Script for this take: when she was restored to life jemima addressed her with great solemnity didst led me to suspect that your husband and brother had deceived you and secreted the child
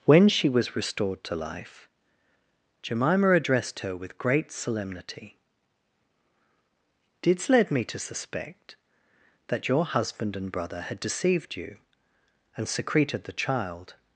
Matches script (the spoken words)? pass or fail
pass